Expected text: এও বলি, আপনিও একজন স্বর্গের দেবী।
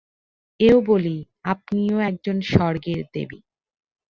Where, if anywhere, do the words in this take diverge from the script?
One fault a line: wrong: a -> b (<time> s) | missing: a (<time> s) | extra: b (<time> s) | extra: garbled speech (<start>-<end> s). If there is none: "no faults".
no faults